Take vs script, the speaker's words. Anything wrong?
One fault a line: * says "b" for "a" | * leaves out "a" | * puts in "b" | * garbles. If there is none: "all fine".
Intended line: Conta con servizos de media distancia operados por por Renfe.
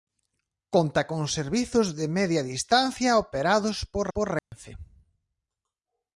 all fine